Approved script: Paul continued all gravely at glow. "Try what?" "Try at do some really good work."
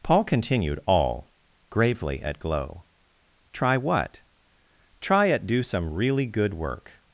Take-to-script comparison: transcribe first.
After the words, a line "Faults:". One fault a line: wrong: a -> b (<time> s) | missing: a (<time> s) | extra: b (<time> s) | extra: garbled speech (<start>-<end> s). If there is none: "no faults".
Paul continued all gravely at glow. "Try what?" "Try at do some really good work."
Faults:
no faults